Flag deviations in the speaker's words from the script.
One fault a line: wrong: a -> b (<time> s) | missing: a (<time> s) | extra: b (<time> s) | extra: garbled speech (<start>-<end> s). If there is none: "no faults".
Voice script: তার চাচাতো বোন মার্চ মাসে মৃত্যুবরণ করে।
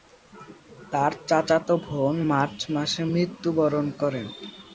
no faults